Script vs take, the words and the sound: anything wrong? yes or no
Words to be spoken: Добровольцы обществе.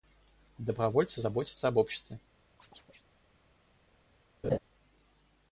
yes